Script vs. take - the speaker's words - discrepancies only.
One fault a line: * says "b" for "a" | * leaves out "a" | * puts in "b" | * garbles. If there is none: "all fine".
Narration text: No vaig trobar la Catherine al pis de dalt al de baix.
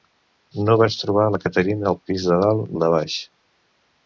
all fine